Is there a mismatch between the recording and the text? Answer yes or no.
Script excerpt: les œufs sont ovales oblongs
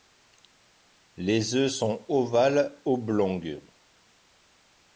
no